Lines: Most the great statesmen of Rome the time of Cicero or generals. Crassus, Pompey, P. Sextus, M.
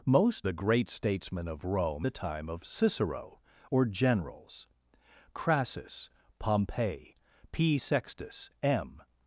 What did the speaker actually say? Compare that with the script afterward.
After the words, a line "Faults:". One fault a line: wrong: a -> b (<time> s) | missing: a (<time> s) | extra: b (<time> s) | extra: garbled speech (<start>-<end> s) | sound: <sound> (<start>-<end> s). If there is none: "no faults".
Most the great statesmen of Rome the time of Cicero or generals. Crassus, Pompey, P. Sextus, M.
Faults:
no faults